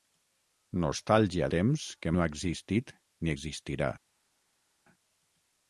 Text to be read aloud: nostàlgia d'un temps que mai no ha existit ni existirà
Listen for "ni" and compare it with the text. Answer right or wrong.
right